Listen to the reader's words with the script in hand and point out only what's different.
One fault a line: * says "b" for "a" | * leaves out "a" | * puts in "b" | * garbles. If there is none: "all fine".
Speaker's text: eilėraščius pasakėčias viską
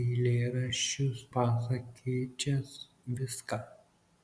all fine